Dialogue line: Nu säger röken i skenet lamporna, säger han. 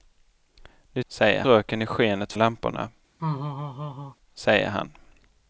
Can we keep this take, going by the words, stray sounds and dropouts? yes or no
no